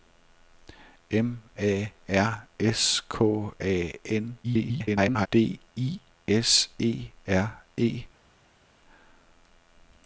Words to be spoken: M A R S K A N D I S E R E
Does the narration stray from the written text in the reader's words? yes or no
yes